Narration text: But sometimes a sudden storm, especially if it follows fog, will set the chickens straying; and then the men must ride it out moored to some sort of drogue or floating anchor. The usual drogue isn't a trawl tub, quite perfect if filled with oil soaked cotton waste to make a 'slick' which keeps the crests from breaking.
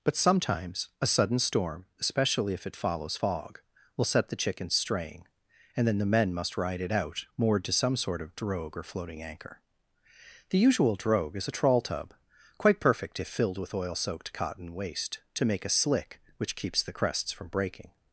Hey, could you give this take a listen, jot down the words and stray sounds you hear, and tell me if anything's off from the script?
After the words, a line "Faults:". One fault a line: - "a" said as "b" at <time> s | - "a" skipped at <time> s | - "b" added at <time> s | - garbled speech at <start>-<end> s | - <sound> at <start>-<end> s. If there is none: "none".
But sometimes a sudden storm, especially if it follows fog, will set the chickens straying; and then the men must ride it out moored to some sort of drogue or floating anchor. The usual drogue is a trawl tub, quite perfect if filled with oil soaked cotton waste to make a 'slick' which keeps the crests from breaking.
Faults:
- "isn't" said as "is" at 11.3 s